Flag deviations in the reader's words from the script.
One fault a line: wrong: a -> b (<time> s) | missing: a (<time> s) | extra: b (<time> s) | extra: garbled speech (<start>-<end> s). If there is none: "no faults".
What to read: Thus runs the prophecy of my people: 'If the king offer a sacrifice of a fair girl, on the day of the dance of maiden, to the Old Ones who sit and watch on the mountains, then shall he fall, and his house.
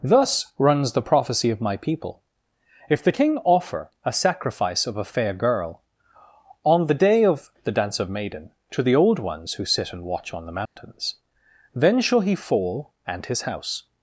no faults